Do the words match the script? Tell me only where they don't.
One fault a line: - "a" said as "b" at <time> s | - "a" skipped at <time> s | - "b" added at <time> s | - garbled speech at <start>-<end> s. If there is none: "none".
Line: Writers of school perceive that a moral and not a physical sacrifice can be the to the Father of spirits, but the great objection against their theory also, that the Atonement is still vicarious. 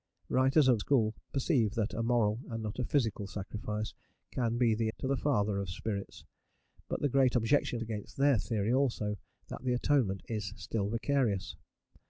none